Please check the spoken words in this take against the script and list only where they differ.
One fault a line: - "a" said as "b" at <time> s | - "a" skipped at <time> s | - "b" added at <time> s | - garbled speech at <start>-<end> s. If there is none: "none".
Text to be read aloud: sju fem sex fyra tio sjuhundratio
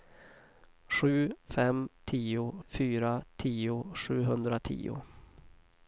- "sex" said as "tio" at 2.0 s